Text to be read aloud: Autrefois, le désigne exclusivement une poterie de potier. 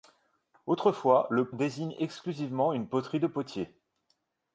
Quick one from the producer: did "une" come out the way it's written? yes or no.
yes